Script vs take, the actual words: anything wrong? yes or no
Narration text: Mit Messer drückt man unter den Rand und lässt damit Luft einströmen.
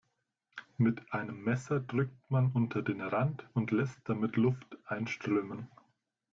yes